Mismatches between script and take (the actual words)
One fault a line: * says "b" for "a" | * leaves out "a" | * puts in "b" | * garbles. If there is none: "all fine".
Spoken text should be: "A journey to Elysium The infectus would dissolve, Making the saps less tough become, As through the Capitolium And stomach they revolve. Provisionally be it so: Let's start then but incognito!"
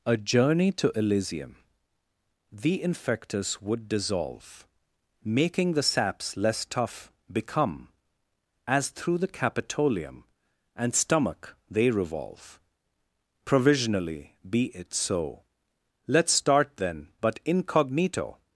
all fine